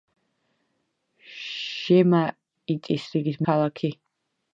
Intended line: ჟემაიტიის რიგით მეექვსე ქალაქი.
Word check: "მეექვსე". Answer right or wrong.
wrong